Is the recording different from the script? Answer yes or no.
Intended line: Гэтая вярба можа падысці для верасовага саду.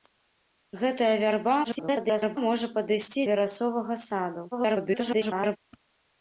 yes